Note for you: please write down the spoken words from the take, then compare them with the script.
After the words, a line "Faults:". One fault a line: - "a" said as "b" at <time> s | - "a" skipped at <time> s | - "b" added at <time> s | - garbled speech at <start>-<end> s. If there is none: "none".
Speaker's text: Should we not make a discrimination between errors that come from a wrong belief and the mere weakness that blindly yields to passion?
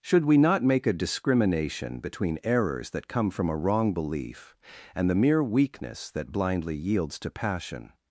Should we not make a discrimination between errors that come from a wrong belief and the mere weakness that blindly yields to passion?
Faults:
none